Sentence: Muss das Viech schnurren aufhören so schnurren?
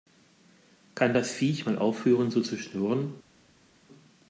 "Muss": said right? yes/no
no